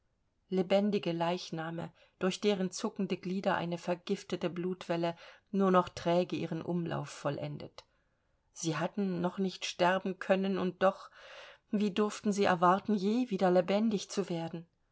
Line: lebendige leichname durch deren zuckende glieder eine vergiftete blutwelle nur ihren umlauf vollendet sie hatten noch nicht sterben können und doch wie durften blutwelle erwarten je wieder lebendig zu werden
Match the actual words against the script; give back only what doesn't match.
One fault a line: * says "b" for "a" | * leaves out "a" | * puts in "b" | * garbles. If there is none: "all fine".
* puts in "noch träge"
* says "sie" for "blutwelle"